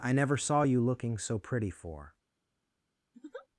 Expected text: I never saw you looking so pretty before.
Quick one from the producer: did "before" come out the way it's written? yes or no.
no